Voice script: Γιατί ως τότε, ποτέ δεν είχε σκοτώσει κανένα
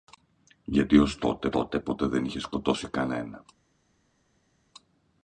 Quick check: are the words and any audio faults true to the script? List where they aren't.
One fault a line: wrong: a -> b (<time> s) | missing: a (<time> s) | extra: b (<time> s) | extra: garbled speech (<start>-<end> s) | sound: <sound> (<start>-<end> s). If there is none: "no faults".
extra: τότε (1.5 s)